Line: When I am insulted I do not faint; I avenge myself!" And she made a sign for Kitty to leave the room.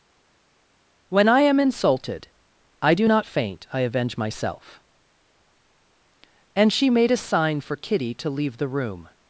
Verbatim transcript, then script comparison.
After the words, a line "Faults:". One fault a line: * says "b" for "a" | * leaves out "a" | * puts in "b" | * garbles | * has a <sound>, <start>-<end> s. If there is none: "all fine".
When I am insulted I do not faint; I avenge myself!" And she made a sign for Kitty to leave the room.
Faults:
all fine